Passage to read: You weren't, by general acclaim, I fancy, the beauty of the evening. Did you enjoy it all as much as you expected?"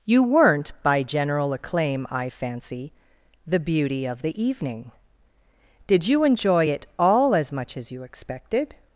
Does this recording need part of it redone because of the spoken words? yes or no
no